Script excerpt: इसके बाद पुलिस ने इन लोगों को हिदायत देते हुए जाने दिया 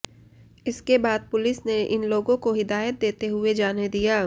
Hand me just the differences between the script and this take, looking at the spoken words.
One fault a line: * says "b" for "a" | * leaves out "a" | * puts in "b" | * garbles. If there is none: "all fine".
all fine